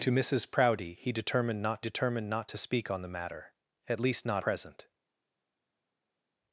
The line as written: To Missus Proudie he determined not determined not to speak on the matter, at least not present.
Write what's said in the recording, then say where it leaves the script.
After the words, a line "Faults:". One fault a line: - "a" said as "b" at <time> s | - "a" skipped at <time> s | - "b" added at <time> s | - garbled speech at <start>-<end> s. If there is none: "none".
To Missus Proudie he determined not determined not to speak on the matter, at least not present.
Faults:
none